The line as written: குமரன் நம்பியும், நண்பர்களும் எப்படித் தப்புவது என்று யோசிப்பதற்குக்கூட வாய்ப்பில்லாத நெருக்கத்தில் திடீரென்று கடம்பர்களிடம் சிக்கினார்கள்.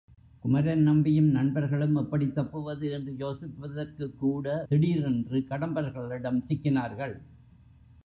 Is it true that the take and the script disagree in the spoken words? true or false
true